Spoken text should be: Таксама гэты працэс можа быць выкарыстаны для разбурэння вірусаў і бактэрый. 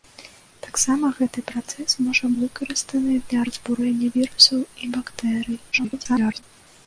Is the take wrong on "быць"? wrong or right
wrong